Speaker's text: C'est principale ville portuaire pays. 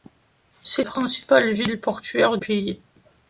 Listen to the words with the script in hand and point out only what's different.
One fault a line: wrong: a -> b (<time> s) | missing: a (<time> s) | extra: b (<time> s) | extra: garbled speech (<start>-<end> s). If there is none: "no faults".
no faults